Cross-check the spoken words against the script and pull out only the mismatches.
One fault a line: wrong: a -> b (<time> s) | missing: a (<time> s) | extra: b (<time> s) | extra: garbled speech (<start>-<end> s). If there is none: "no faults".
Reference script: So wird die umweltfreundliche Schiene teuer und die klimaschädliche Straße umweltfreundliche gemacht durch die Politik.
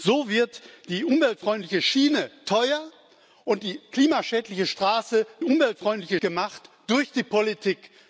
no faults